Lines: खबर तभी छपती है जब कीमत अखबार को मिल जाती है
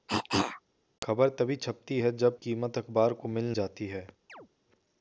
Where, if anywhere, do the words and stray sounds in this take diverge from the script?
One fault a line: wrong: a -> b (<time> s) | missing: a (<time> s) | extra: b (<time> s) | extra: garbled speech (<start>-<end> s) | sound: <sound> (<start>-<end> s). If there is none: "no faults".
sound: cough (0.1-0.6 s)
sound: chirp (4.3-4.5 s)